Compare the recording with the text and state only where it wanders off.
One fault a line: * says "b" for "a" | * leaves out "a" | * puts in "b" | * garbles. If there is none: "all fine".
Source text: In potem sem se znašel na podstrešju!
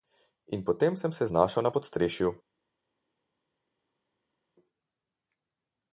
all fine